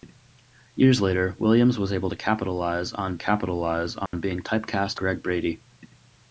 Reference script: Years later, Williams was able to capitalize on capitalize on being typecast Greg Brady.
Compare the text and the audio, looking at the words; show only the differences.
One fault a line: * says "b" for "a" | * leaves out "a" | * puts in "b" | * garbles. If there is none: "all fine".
all fine